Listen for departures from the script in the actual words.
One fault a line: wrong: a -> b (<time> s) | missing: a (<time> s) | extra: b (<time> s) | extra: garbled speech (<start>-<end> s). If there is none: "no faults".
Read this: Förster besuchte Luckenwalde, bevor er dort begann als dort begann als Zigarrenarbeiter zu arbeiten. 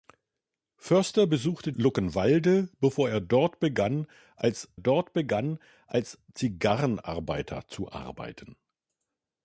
no faults